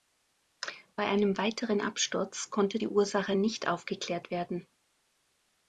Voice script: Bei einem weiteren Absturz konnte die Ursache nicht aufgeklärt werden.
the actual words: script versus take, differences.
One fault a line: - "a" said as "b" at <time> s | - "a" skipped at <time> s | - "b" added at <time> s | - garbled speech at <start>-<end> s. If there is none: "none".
none